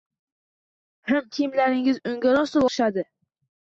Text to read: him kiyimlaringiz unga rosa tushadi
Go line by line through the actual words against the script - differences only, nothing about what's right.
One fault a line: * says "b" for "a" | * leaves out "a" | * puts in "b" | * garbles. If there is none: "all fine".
all fine